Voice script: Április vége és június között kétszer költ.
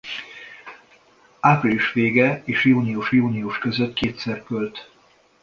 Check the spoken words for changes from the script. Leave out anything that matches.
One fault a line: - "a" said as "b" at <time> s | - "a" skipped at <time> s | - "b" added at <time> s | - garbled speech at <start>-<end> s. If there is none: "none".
- "június" added at 3.1 s